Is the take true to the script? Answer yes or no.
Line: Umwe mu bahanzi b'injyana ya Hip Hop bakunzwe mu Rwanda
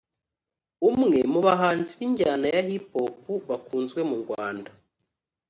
yes